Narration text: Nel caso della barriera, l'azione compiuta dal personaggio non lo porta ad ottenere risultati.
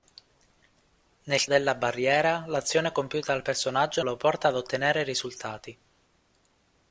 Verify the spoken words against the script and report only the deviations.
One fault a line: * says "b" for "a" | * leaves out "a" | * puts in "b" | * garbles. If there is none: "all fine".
* leaves out "caso"
* leaves out "non"